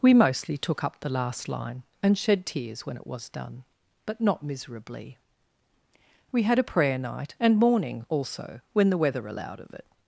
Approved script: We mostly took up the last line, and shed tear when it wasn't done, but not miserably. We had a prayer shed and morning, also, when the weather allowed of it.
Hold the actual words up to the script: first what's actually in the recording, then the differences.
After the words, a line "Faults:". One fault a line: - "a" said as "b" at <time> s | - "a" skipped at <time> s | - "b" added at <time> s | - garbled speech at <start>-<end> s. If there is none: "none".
We mostly took up the last line, and shed tears when it was done, but not miserably. We had a prayer night and morning, also, when the weather allowed of it.
Faults:
- "tear" said as "tears" at 2.5 s
- "wasn't" said as "was" at 3.0 s
- "shed" said as "night" at 7.0 s